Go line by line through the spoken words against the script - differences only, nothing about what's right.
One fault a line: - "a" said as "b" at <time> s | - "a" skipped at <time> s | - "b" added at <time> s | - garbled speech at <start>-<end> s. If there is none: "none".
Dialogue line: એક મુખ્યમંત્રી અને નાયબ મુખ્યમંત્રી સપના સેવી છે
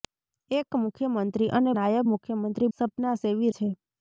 none